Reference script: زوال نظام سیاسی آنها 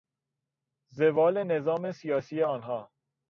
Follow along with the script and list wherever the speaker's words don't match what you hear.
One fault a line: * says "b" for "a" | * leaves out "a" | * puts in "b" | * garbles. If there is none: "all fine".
all fine